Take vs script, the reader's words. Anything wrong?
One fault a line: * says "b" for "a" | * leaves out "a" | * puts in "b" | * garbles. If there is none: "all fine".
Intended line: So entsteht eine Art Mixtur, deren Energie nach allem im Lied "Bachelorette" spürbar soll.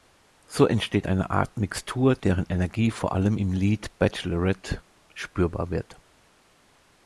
* says "vor" for "nach"
* says "wird" for "soll"